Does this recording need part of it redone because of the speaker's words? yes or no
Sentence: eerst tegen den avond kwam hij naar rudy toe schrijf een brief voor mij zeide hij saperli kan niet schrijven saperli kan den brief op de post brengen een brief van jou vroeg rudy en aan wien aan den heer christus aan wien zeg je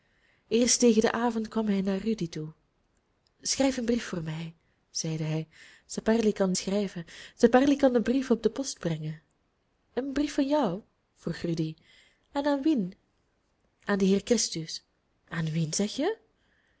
yes